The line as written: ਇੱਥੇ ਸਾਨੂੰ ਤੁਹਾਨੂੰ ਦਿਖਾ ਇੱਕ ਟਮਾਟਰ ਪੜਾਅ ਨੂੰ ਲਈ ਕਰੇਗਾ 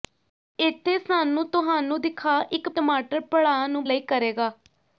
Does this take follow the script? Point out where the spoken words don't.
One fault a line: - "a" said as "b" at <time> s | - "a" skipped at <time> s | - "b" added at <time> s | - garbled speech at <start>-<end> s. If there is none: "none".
none